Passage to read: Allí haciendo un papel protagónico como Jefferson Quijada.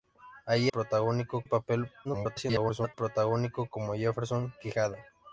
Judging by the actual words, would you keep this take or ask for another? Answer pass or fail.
fail